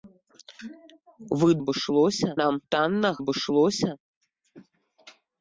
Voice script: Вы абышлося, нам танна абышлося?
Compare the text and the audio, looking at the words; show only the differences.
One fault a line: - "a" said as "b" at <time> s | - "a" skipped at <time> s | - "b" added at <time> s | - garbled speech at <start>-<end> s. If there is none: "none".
none